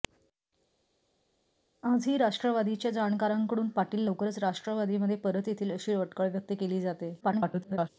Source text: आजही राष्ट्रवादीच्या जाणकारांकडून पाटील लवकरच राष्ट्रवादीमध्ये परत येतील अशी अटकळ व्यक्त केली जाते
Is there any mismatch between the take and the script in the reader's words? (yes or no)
yes